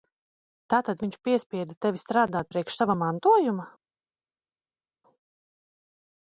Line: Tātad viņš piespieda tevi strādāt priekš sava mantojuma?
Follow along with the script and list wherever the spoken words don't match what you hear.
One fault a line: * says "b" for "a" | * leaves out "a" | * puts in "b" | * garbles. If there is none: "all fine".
all fine